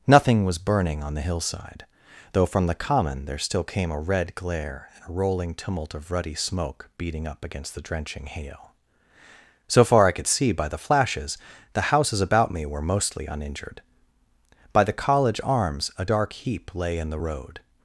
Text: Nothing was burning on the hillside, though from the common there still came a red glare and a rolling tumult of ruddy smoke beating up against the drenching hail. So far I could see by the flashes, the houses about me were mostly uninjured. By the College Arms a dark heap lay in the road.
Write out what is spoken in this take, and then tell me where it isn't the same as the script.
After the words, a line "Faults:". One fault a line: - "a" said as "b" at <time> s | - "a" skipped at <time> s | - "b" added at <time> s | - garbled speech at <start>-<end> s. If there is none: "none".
Nothing was burning on the hillside, though from the common there still came a red glare and a rolling tumult of ruddy smoke beating up against the drenching hail. So far I could see by the flashes, the houses about me were mostly uninjured. By the College Arms a dark heap lay in the road.
Faults:
none